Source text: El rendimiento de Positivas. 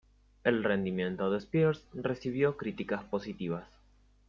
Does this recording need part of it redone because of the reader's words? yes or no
yes